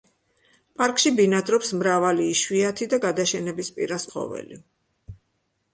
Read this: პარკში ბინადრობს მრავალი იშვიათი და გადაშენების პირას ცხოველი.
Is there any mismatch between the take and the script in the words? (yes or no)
no